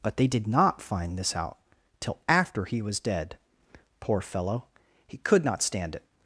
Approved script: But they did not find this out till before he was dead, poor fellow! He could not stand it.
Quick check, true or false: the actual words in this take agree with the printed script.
false